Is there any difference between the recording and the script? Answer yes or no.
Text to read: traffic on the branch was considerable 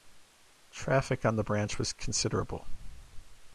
no